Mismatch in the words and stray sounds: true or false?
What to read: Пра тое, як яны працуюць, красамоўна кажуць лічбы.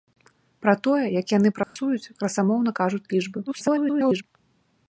true